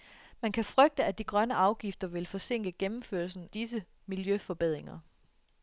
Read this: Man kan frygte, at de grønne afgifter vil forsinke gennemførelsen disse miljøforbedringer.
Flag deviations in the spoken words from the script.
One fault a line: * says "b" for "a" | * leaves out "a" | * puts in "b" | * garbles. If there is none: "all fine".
all fine